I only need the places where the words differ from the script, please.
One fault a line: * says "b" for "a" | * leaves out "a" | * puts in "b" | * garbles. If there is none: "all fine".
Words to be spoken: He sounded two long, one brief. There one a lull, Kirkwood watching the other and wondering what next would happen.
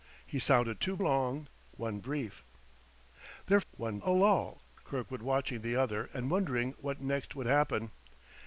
all fine